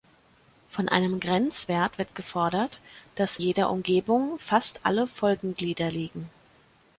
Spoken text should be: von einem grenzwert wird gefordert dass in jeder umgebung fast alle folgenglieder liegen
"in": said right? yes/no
no